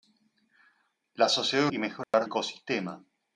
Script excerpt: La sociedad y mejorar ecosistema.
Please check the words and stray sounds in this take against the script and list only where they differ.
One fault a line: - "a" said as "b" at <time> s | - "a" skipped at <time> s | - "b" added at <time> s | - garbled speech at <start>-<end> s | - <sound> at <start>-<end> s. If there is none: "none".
- dropout at 2.0-2.1 s